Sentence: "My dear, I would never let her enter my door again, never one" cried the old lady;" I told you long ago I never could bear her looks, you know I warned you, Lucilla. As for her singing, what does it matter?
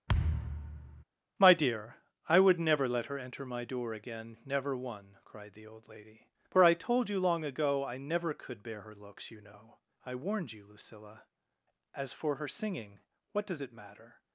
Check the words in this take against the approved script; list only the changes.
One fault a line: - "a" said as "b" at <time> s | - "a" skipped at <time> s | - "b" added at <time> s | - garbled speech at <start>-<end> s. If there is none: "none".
- "for" added at 6.5 s